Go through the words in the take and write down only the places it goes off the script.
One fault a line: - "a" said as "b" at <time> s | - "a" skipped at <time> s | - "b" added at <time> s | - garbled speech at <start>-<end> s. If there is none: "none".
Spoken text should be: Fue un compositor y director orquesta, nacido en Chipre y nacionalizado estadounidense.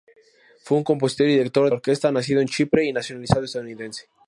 none